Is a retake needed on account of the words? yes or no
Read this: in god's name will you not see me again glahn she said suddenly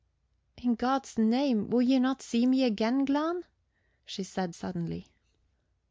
no